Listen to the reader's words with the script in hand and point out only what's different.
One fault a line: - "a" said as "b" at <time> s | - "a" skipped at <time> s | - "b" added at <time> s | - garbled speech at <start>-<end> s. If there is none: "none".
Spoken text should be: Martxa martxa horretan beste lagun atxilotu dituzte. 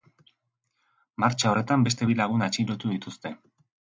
- "martxa" skipped at 1.5 s
- "bi" added at 2.1 s